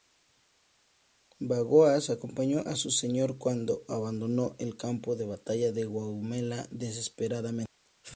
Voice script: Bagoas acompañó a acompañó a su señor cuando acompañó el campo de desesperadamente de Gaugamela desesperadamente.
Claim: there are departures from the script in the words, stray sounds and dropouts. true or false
true